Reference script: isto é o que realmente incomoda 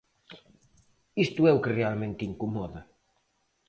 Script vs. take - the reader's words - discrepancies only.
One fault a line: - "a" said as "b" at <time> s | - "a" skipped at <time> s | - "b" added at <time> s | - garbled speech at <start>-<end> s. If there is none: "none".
none